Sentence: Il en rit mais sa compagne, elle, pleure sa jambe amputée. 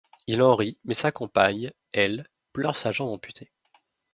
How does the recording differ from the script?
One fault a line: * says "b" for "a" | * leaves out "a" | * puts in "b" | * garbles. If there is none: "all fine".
all fine